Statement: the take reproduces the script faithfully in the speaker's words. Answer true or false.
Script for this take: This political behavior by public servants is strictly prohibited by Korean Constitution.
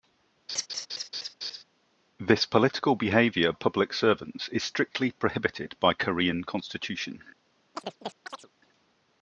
false